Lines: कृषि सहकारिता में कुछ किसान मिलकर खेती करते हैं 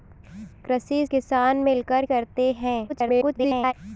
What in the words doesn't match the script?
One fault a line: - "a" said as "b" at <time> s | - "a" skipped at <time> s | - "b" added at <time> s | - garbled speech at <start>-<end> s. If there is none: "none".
- "सहकारिता में कुछ" skipped at 1.1 s
- "खेती" skipped at 2.1 s
- garbled speech at 2.9-3.7 s